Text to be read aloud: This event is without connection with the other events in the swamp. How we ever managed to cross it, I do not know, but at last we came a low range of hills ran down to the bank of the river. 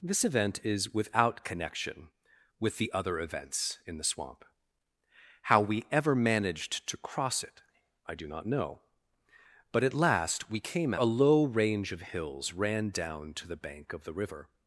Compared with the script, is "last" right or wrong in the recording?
right